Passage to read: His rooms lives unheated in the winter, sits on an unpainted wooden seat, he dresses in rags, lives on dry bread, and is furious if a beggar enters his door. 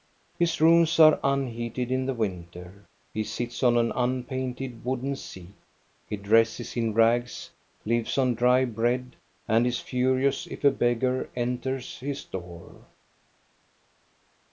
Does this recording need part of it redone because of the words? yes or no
yes